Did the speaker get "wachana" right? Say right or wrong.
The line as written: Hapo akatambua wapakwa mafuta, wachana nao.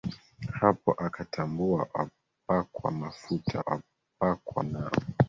wrong